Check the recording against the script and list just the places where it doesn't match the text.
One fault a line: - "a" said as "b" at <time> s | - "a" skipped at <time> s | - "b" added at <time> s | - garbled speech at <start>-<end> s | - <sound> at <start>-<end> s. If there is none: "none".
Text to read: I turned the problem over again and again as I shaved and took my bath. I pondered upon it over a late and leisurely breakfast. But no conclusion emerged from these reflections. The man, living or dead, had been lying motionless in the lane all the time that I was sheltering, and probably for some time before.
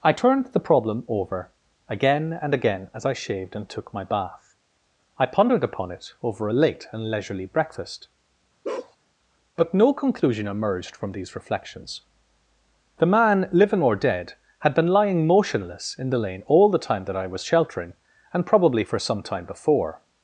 - bark at 8.6-9.0 s